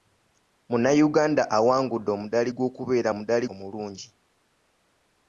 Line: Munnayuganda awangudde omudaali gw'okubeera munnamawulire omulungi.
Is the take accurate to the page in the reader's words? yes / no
no